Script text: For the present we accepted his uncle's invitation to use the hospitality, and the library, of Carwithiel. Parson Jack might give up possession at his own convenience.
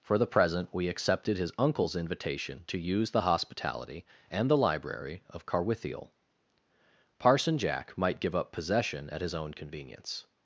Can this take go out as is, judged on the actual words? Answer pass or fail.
pass